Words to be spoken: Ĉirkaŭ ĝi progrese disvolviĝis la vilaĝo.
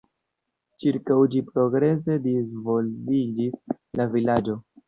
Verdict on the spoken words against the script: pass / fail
pass